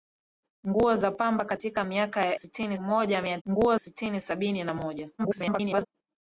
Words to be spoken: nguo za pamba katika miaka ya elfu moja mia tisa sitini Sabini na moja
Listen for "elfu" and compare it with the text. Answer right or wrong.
wrong